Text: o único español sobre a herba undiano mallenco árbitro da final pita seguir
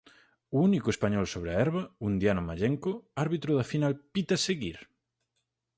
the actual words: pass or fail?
pass